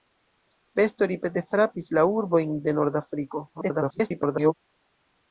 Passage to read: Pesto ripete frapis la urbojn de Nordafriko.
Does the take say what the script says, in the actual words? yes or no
no